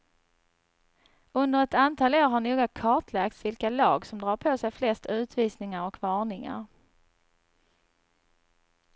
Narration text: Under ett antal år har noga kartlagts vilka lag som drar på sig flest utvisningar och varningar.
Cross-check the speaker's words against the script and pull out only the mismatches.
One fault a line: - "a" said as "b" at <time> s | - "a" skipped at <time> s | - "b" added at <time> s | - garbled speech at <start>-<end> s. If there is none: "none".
none